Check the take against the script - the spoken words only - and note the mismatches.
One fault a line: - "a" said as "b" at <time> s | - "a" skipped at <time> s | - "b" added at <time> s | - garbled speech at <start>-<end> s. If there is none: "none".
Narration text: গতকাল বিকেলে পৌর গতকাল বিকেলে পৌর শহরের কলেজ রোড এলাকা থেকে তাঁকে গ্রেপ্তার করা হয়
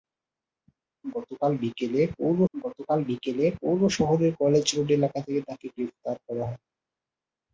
none